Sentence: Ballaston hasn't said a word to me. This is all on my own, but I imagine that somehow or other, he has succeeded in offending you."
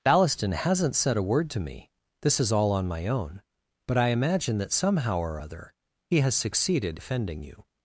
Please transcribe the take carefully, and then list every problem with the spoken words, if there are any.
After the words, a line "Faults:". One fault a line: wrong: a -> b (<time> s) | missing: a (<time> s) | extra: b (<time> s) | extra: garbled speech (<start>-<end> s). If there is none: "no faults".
Ballaston hasn't said a word to me. This is all on my own, but I imagine that somehow or other, he has succeeded offending you."
Faults:
missing: in (7.0 s)